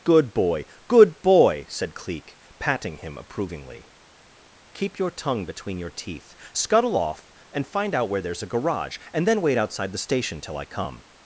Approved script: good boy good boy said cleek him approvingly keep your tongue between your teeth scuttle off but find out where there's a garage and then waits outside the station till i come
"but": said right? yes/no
no